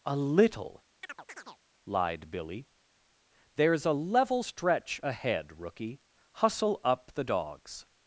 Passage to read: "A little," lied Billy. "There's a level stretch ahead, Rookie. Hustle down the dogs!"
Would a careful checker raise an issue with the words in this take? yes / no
yes